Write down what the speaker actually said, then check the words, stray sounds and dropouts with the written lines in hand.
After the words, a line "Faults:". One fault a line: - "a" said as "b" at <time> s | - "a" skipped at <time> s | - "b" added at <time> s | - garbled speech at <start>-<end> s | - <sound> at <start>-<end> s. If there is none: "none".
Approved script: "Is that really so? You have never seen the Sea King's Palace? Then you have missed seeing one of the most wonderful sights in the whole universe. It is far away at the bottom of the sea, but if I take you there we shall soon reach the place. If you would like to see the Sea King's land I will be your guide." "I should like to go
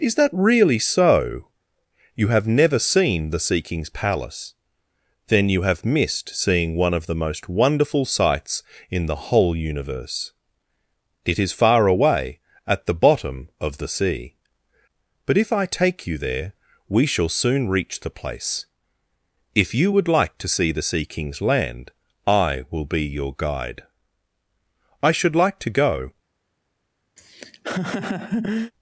"Is that really so? You have never seen the Sea King's Palace? Then you have missed seeing one of the most wonderful sights in the whole universe. It is far away at the bottom of the sea, but if I take you there we shall soon reach the place. If you would like to see the Sea King's land I will be your guide." "I should like to go
Faults:
- laugh at 27.2-28.7 s